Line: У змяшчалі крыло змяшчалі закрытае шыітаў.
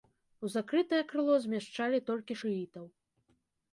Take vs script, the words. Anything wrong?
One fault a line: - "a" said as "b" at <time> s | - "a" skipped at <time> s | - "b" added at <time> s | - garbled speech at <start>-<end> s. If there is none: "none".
- "змяшчалі" said as "закрытае" at 0.5 s
- "закрытае" said as "толькі" at 2.1 s